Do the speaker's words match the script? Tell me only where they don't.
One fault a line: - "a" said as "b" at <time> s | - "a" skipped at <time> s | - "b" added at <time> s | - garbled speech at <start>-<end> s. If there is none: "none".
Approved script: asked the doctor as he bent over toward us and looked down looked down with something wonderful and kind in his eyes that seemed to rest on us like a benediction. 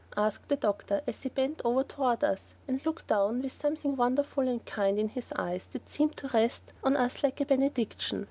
- "looked down" skipped at 3.4 s